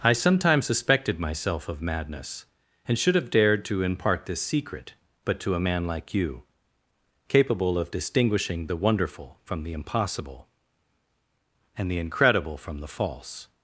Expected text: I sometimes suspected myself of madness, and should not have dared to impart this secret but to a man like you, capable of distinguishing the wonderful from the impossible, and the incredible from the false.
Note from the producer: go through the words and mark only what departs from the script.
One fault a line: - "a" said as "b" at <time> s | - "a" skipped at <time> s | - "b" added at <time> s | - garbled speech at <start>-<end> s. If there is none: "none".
- "not" skipped at 3.2 s